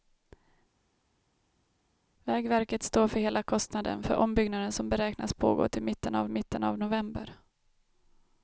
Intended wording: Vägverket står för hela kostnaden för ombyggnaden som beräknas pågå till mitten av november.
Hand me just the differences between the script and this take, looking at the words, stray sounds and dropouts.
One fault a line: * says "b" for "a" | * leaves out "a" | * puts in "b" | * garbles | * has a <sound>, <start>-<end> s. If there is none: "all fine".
* puts in "mitten av"